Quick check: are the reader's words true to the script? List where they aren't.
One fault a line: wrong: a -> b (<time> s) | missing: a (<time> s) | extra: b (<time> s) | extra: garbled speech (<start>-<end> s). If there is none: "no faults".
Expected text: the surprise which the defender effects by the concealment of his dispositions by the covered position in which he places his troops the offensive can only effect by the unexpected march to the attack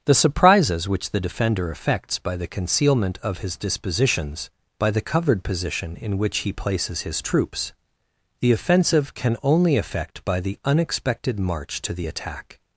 wrong: surprise -> surprises (0.1 s)